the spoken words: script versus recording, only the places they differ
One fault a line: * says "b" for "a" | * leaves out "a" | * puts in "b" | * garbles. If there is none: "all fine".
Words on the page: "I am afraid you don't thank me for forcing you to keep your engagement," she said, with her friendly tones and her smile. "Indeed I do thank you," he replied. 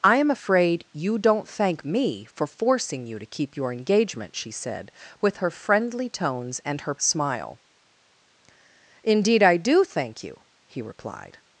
all fine